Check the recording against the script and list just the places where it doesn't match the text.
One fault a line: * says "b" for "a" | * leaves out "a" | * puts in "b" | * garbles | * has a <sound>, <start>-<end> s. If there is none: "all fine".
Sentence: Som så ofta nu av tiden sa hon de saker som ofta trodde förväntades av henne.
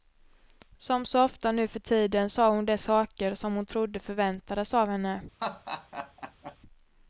* says "för" for "av"
* says "hon" for "ofta"
* has a laugh, 5.4-6.6 s